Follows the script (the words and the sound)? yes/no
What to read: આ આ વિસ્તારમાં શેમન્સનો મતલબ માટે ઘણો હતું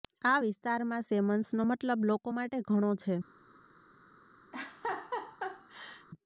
no